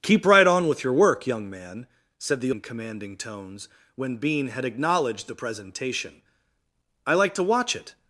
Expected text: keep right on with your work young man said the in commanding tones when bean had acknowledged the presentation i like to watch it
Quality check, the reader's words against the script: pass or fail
pass